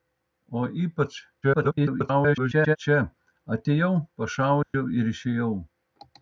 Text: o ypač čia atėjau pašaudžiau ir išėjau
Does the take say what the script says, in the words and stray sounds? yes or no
no